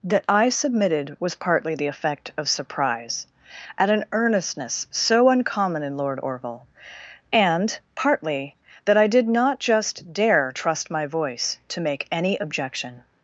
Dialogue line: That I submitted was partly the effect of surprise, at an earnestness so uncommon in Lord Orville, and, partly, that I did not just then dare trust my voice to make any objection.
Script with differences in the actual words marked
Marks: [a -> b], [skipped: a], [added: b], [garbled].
That I submitted was partly the effect of surprise, at an earnestness so uncommon in Lord Orville, and, partly, that I did not just [skipped: then] dare trust my voice to make any objection.